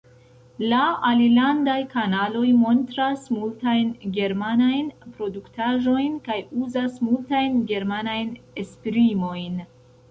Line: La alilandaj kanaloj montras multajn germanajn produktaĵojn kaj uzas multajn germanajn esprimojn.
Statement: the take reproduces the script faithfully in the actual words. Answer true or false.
true